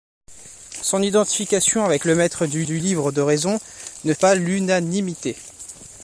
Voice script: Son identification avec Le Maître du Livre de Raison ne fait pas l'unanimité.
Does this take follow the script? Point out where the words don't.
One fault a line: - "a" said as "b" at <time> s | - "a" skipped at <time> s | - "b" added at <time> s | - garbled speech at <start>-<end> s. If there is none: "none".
- "du" added at 2.6 s
- "fait" skipped at 4.1 s